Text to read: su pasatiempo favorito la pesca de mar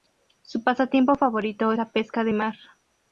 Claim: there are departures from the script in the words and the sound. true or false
false